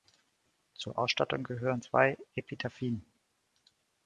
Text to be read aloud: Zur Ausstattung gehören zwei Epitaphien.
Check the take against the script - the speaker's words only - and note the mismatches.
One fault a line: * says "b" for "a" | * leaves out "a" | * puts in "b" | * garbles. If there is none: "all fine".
all fine